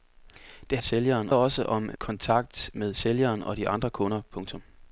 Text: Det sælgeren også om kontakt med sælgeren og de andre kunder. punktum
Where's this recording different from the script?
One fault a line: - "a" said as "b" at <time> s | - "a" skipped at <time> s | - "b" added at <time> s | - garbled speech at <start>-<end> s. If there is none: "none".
none